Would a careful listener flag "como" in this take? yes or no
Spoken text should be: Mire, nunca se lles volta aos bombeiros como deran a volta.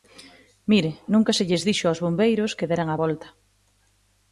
yes